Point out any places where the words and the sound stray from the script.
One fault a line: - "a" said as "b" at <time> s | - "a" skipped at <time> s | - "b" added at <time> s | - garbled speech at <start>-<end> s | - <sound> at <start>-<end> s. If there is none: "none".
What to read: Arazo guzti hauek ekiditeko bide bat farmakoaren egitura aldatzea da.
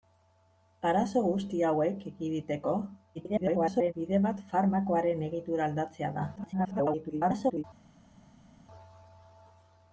- garbled speech at 3.1-3.9 s
- garbled speech at 6.4-7.6 s